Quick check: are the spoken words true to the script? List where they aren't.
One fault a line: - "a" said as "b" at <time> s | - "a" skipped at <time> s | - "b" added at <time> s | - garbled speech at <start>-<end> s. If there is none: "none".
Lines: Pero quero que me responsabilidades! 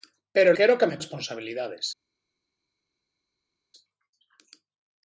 none